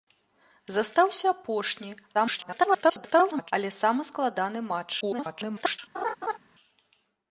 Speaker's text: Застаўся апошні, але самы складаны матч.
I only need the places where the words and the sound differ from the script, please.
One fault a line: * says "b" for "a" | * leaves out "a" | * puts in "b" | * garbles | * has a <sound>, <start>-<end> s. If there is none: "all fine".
* garbles
* garbles
* has a laugh, 5.9-6.4 s